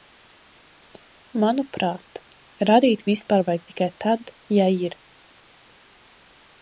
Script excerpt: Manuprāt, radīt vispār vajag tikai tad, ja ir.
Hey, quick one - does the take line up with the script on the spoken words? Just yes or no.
yes